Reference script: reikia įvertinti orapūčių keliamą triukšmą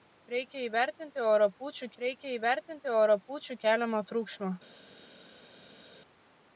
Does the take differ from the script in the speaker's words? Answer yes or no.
yes